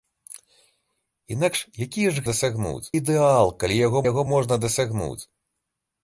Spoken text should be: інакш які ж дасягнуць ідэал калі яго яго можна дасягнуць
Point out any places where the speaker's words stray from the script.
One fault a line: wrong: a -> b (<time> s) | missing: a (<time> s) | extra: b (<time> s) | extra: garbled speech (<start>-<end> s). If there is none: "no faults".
no faults